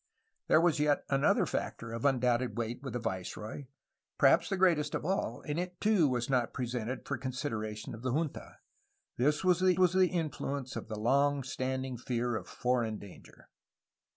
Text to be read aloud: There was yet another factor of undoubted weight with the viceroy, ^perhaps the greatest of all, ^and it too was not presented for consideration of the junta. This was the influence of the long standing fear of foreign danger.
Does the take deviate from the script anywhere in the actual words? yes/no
yes